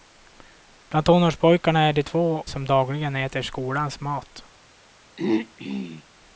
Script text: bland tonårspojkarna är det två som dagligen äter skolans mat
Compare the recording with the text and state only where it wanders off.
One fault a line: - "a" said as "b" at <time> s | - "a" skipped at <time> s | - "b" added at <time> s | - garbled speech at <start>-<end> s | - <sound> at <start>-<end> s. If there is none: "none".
- throat clearing at 5.2-6.0 s